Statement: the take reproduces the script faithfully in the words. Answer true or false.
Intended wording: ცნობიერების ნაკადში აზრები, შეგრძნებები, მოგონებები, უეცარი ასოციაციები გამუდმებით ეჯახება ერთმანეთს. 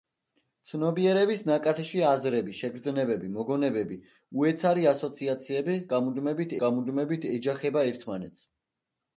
false